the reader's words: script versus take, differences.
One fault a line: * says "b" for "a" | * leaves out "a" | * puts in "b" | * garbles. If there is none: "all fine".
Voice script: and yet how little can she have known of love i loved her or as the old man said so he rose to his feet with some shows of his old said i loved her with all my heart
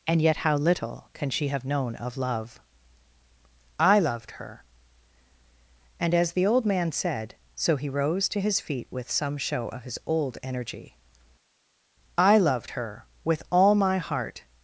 * says "and" for "or"
* says "show" for "shows"
* says "energy" for "said"